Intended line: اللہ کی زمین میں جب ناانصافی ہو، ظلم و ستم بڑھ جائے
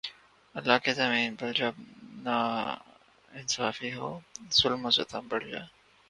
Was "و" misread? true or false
false